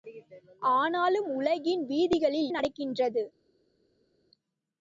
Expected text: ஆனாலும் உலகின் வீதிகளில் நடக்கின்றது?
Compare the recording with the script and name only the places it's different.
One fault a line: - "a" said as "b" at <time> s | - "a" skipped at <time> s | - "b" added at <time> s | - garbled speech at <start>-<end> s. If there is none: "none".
none